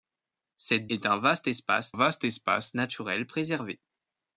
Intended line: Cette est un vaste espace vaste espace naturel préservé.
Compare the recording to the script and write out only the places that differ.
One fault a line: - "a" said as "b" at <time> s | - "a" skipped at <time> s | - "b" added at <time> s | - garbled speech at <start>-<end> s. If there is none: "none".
none